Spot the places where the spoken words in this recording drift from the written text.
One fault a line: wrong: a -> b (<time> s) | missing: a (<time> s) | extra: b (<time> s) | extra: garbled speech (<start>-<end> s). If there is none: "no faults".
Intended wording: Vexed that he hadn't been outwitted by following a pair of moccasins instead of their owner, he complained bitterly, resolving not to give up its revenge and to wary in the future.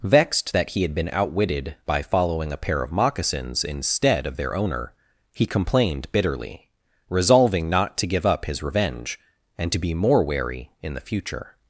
wrong: hadn't -> had (0.8 s)
wrong: its -> his (8.5 s)
extra: be more (9.8 s)